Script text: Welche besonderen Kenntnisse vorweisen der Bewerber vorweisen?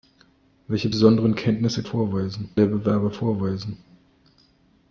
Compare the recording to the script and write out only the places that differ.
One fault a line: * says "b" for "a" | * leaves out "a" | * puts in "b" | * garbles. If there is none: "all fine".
all fine